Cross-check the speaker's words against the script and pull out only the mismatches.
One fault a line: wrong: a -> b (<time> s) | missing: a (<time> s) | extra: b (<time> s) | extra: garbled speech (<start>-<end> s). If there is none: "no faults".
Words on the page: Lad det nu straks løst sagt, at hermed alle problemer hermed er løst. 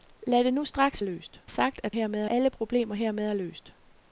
no faults